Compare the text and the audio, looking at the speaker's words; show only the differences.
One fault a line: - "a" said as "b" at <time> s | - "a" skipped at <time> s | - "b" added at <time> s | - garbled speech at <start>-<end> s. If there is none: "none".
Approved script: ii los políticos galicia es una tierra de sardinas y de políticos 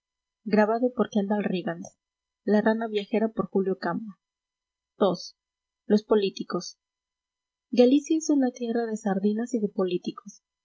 none